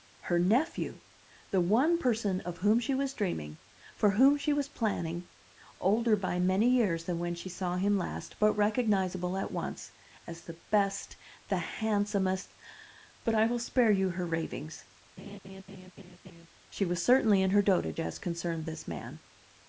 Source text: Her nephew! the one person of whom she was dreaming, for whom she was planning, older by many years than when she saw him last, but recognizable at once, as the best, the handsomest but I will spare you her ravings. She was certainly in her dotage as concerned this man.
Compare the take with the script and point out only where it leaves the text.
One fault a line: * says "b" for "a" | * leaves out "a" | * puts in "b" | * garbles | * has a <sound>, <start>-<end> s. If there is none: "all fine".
* has a laugh, 15.2-16.5 s